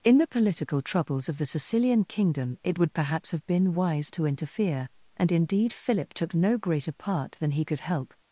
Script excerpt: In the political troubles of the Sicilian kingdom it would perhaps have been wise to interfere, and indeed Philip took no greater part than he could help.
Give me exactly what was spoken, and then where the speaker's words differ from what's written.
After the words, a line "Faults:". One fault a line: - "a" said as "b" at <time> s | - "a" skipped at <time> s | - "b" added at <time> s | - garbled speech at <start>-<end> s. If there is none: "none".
In the political troubles of the Sicilian kingdom it would perhaps have been wise to interfere, and indeed Philip took no greater part than he could help.
Faults:
none